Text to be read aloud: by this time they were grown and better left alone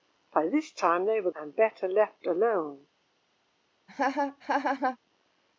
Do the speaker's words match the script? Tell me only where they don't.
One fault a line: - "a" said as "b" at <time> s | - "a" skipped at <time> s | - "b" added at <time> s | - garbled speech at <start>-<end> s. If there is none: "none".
- "grown" skipped at 1.3 s